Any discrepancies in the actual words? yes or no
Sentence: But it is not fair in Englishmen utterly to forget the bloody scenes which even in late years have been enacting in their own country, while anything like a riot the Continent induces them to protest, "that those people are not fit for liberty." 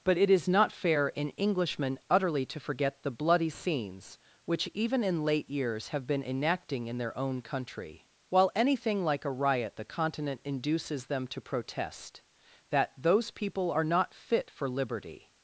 no